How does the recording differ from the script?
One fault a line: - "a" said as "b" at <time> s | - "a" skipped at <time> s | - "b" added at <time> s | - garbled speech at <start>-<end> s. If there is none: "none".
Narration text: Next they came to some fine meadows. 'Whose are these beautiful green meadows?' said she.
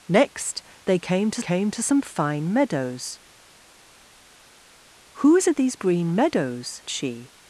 - "came to" added at 1.4 s
- "beautiful" skipped at 5.7 s
- "said" skipped at 6.8 s